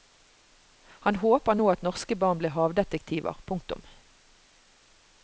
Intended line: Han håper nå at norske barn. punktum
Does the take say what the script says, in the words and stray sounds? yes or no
no